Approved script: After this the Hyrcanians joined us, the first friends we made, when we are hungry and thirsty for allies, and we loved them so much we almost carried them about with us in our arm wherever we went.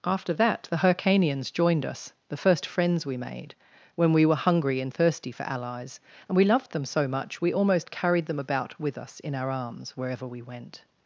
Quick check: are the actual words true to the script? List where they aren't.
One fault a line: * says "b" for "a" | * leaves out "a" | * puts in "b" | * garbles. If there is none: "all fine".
* says "that" for "this"
* says "were" for "are"
* says "arms" for "arm"